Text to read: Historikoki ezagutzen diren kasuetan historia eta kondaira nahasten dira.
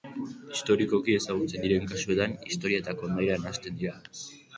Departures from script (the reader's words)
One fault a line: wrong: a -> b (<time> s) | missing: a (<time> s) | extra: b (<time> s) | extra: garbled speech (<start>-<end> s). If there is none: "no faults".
no faults